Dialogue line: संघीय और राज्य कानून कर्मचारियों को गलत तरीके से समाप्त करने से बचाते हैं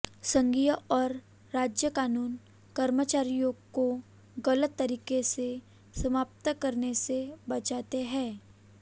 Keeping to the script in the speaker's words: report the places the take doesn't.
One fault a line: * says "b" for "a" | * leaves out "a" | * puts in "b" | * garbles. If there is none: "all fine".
all fine